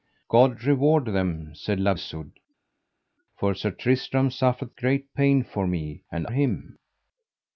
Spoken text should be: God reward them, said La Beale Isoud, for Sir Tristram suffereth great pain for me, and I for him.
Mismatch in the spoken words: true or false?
true